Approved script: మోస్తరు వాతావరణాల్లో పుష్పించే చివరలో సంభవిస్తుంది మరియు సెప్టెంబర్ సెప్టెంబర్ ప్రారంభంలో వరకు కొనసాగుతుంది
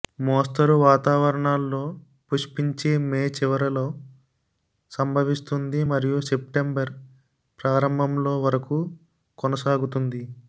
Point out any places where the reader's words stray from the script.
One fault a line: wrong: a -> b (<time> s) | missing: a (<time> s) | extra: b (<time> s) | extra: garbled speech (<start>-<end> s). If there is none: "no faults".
extra: మే (3.0 s)
missing: సెప్టెంబర్ (6.9 s)